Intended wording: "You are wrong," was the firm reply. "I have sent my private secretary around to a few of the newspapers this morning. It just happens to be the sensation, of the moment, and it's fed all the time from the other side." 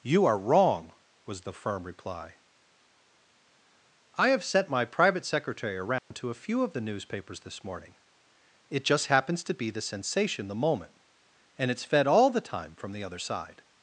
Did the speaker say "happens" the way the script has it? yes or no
yes